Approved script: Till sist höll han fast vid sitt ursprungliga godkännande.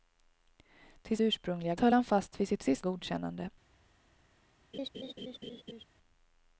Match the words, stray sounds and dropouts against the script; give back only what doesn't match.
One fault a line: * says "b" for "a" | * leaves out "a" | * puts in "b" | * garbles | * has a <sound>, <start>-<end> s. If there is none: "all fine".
* says "ursprungliga" for "sist"
* says "sist" for "ursprungliga"
* has a laugh, 4.7-5.9 s